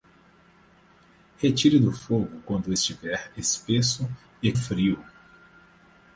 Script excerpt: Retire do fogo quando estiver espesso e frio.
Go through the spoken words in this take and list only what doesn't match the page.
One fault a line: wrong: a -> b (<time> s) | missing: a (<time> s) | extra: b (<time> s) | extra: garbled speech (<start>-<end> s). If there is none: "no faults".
no faults